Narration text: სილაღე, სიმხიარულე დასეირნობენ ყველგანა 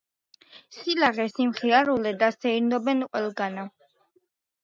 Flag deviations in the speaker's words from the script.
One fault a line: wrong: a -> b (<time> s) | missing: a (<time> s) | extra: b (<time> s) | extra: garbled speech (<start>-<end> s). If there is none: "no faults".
no faults